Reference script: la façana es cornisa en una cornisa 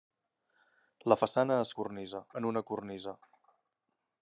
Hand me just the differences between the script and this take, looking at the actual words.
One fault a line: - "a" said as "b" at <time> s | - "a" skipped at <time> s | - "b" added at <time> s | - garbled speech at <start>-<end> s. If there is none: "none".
none